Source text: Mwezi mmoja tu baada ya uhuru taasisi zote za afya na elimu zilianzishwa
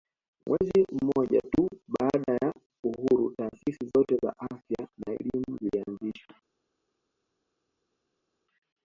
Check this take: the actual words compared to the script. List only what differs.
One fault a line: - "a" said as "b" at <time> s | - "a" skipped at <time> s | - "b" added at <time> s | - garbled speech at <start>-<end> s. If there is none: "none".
none